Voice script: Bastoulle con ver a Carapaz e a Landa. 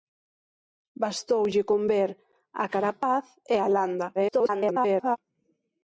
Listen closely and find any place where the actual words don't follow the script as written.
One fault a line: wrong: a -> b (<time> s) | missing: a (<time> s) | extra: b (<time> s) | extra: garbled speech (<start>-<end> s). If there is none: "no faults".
extra: garbled speech (4.1-5.2 s)